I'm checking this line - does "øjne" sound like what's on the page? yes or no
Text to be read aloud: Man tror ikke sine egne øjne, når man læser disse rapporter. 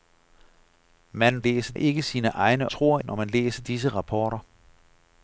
no